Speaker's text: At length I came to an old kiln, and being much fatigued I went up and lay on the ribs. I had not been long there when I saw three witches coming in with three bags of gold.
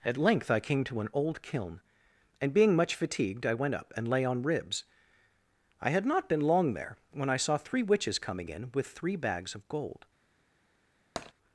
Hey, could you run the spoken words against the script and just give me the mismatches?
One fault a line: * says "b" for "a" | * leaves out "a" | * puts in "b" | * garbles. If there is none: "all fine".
* leaves out "the"